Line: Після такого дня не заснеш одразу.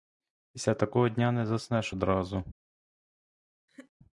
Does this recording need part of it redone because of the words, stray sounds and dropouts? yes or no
yes